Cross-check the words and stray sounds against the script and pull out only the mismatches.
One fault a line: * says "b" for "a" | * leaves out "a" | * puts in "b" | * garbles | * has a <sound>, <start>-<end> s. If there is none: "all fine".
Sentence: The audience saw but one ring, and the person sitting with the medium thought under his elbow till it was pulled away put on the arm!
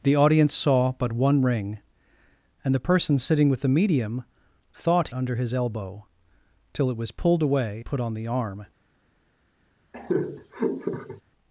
* has a laugh, 9.9-11.2 s